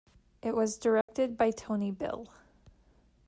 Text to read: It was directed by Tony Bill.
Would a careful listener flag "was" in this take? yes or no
no